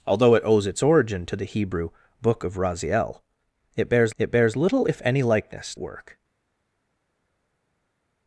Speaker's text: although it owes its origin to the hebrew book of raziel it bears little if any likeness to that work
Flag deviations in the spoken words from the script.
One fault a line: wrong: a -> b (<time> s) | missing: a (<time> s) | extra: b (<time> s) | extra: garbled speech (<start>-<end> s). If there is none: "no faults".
extra: it bears (4.2 s)
missing: to that (5.7 s)